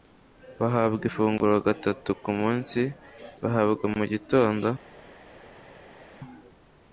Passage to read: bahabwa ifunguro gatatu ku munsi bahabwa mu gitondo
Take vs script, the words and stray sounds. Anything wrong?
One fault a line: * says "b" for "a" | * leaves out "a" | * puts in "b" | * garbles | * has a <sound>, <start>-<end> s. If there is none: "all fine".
all fine